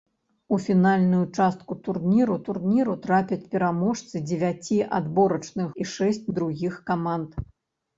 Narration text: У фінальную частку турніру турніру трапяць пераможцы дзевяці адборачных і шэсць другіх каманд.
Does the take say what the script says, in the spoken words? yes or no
yes